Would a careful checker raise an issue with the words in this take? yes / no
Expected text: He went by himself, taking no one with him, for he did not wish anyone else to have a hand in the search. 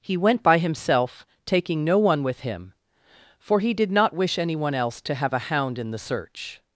yes